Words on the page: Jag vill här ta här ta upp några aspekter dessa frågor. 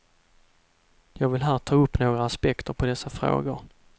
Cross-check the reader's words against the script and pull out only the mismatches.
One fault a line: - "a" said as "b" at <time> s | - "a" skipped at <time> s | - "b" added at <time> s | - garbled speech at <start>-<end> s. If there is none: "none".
- "här ta" skipped at 1.8 s
- "på" added at 2.7 s